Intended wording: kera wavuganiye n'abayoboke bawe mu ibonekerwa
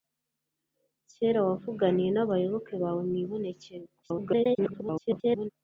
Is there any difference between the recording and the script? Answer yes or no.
yes